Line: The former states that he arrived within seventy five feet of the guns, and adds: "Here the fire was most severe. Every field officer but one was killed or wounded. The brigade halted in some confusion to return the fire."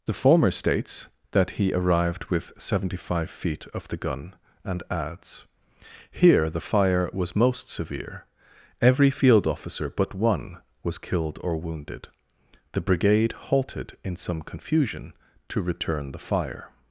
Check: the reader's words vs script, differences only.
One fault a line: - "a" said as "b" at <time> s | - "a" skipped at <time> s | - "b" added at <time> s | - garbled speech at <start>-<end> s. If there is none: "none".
- "within" said as "with" at 2.2 s
- "guns" said as "gun" at 4.0 s